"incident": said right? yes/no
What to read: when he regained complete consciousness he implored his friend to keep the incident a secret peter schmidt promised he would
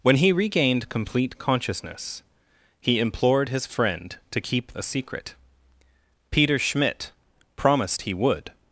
no